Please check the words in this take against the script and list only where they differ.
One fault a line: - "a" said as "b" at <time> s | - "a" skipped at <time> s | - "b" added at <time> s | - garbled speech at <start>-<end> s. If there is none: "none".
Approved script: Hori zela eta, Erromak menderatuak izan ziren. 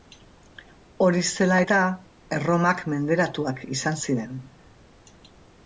none